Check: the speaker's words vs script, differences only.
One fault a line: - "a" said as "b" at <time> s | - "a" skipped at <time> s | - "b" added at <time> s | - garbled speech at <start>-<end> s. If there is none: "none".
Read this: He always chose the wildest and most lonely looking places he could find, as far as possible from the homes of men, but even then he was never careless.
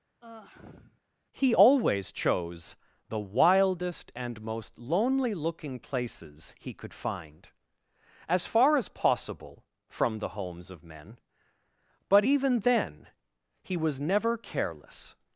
none